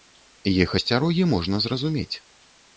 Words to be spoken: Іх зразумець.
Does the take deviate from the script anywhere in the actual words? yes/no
yes